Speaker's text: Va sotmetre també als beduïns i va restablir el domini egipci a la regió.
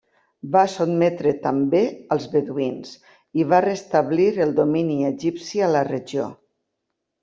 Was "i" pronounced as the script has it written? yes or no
yes